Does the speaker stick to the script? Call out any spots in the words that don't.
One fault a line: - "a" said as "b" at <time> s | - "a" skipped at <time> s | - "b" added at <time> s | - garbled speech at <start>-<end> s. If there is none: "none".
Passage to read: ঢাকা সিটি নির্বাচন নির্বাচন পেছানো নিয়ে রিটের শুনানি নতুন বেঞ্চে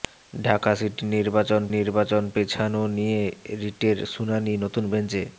none